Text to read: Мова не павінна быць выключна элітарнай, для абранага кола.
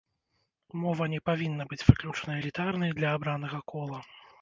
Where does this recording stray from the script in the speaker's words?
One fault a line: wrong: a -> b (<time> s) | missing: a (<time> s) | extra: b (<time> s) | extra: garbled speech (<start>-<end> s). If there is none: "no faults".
no faults